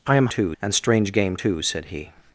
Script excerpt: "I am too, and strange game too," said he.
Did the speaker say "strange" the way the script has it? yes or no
yes